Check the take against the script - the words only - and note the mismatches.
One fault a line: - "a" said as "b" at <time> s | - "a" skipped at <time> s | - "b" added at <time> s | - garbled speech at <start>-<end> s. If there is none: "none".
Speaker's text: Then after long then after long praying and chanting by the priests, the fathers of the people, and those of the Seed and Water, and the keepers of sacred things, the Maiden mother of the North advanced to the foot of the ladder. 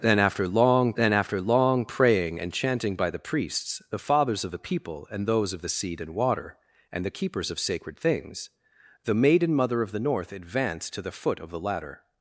none